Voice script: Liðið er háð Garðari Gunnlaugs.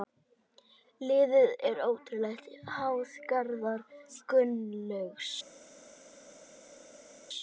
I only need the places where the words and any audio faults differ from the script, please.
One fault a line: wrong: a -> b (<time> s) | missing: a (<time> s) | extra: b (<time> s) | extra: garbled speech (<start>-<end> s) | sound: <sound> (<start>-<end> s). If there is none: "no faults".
extra: ótrúlega (1.9 s)